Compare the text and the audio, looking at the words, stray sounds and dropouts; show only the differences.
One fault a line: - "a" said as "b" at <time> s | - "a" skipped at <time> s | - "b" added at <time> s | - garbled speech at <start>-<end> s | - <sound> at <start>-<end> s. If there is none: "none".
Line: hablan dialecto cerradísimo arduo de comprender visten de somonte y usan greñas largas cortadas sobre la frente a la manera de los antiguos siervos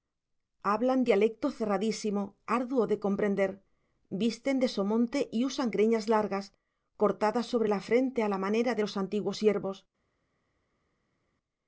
none